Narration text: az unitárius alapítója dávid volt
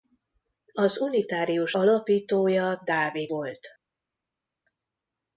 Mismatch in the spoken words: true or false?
false